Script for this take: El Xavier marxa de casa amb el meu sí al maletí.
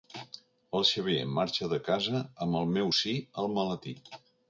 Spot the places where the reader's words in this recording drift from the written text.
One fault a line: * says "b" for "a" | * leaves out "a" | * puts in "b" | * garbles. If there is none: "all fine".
all fine